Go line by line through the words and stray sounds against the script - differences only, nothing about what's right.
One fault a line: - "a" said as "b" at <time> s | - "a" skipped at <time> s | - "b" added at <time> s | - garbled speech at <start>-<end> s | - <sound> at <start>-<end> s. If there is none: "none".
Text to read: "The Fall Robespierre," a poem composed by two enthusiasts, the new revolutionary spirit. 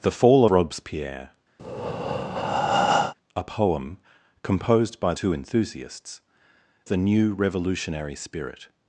- breath at 1.6-3.1 s